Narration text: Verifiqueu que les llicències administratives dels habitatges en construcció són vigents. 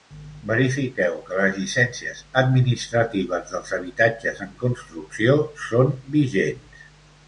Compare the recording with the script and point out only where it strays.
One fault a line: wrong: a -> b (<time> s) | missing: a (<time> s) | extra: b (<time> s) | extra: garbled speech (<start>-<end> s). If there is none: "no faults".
no faults